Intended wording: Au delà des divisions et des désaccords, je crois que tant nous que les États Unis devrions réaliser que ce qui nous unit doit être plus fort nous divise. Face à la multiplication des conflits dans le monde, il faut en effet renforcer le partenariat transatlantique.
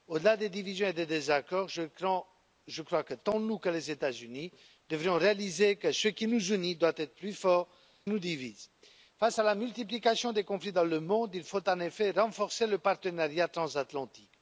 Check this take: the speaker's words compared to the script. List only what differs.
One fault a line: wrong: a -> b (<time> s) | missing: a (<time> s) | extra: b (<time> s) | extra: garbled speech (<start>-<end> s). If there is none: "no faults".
no faults